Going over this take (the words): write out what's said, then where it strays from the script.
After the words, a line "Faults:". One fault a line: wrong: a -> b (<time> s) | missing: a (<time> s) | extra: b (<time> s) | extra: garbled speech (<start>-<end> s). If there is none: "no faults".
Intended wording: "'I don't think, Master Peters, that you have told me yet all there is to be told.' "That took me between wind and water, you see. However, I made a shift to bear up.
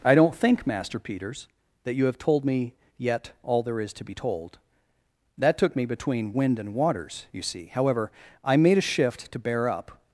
"'I don't think, Master Peters, that you have told me yet all there is to be told.' "That took me between wind and waters, you see. However, I made a shift to bear up.
Faults:
wrong: water -> waters (6.7 s)